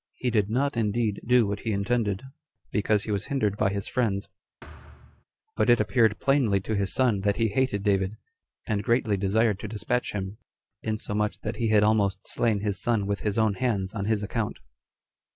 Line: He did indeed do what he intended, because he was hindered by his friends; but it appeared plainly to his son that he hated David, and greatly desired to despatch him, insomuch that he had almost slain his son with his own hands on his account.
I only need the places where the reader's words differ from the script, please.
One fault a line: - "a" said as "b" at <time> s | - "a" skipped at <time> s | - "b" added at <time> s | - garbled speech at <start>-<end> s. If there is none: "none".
- "not" added at 0.5 s